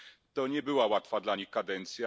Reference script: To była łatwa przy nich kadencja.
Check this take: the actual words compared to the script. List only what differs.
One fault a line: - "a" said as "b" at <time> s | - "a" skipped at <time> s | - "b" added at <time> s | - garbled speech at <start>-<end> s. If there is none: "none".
- "nie" added at 0.5 s
- "przy" said as "dla" at 1.2 s